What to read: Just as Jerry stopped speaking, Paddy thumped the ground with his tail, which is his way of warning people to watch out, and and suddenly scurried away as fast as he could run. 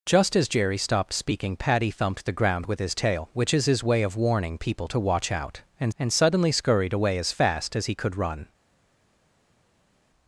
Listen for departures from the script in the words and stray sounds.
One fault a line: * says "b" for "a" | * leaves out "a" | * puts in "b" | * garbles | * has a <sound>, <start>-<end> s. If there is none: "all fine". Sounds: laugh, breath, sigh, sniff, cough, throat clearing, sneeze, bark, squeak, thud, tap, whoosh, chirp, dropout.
all fine